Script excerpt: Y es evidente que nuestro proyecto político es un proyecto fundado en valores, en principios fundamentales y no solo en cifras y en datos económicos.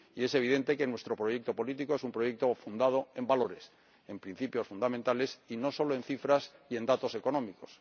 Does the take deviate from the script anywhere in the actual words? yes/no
no